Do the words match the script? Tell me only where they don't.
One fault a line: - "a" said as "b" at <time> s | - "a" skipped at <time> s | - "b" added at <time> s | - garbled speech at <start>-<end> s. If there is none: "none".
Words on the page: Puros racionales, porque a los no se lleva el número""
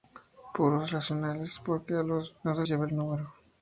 none